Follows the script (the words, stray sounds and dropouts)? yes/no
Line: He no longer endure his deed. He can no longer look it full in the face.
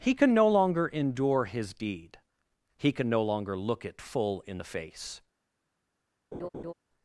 no